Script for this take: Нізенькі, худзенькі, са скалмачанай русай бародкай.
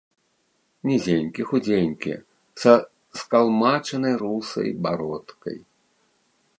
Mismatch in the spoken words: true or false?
false